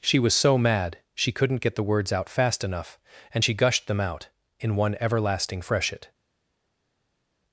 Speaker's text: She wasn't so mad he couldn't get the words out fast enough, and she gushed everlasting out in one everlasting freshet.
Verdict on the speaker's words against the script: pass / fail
fail